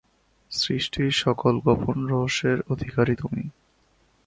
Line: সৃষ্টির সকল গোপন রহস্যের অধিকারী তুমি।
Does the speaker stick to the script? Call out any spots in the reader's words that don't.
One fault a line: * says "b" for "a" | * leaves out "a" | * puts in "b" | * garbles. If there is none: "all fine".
all fine